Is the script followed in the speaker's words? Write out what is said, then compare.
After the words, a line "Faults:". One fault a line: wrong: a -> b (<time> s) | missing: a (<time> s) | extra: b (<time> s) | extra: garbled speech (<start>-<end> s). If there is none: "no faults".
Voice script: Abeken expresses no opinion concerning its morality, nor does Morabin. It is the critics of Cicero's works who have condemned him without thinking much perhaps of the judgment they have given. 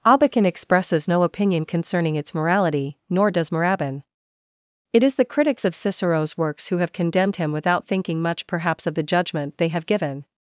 Abeken expresses no opinion concerning its morality, nor does Morabin. It is the critics of Cicero's works who have condemned him without thinking much perhaps of the judgment they have given.
Faults:
no faults